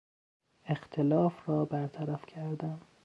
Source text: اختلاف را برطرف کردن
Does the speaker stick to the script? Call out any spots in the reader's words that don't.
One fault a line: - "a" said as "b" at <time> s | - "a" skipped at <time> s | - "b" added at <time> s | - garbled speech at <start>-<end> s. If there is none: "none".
none